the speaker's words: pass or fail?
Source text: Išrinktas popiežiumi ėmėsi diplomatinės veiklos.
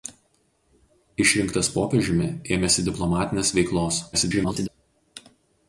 fail